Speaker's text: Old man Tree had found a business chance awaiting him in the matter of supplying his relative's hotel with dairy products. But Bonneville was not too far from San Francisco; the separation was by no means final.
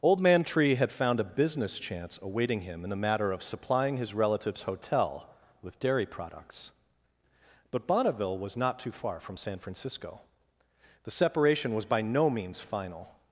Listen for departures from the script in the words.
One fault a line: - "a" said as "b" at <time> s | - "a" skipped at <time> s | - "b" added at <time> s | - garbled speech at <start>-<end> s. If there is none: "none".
none